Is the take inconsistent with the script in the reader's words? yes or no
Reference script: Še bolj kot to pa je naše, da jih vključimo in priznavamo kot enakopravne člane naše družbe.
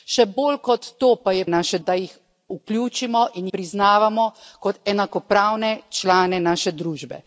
no